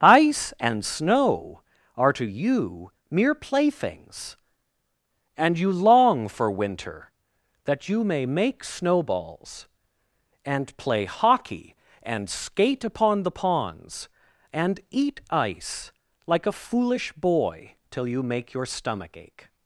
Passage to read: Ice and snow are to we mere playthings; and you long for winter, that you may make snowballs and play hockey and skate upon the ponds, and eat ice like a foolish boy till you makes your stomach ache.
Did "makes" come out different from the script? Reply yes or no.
yes